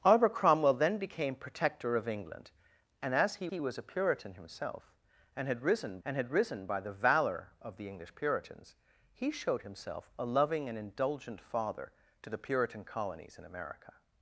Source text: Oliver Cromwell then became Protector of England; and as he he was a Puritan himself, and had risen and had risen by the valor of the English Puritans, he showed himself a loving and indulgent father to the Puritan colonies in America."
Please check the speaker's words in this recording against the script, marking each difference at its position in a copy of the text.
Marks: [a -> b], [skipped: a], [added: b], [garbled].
Oliver Cromwell then became Protector of England; and as he he was a Puritan himself, and had risen and had risen by the valor of the English Puritans, he showed himself a loving and indulgent father to the Puritan colonies in America."